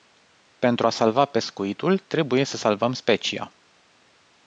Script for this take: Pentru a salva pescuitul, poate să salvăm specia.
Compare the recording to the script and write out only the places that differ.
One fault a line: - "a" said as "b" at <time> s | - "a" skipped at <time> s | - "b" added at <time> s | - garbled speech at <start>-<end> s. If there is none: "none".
- "poate" said as "trebuie" at 2.0 s